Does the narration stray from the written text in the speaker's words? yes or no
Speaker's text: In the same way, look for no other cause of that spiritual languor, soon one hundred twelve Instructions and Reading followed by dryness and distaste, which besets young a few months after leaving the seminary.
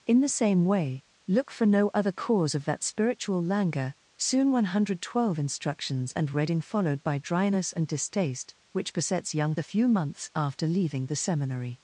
no